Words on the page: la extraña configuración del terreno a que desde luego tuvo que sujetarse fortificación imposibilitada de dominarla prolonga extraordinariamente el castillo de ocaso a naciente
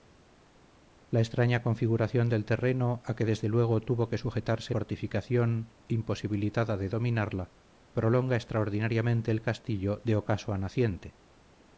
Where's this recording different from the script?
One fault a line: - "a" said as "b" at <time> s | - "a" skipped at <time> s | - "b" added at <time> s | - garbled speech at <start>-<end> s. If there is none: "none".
none